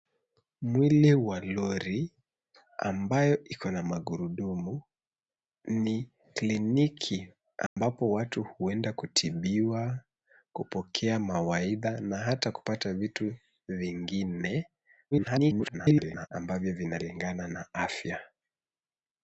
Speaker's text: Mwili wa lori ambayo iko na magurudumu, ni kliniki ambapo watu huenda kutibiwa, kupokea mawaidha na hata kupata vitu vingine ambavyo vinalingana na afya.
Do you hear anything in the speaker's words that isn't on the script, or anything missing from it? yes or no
yes